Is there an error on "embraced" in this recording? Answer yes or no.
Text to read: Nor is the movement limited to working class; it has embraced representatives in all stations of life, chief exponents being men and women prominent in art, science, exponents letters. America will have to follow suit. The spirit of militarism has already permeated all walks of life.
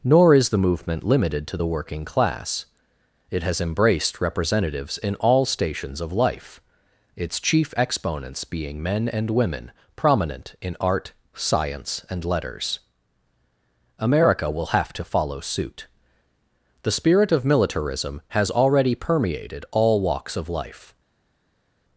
no